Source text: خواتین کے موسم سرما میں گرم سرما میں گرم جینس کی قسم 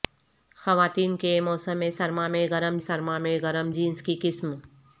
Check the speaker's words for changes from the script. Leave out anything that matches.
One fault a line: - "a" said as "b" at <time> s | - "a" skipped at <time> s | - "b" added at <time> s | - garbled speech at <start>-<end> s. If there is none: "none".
none